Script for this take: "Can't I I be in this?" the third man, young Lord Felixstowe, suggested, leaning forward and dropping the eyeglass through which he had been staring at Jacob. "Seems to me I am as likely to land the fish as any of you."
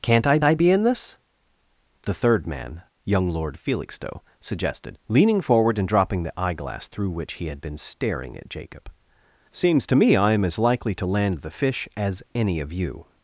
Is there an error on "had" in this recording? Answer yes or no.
no